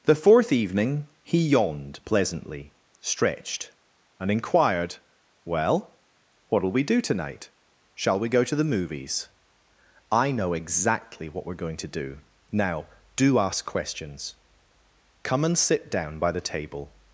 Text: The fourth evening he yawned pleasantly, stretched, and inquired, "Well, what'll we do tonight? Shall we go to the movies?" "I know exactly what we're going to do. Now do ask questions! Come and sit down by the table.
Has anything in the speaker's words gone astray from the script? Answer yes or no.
no